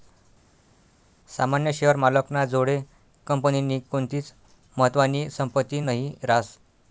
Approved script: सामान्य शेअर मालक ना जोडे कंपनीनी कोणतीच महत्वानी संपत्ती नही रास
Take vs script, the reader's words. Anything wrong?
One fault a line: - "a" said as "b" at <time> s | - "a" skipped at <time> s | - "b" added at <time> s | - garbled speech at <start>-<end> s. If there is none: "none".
none